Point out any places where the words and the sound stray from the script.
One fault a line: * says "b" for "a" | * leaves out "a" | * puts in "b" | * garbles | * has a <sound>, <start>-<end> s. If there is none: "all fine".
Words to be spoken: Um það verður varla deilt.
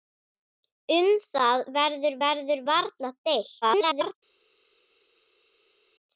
* puts in "verður"
* garbles